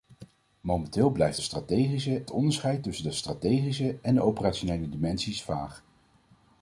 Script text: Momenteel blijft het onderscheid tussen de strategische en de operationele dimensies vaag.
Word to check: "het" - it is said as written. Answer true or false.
false